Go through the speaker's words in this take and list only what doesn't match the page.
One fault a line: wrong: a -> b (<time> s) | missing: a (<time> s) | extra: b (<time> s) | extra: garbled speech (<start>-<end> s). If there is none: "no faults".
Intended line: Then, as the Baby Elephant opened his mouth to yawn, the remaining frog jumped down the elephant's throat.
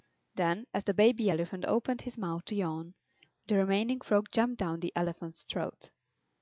no faults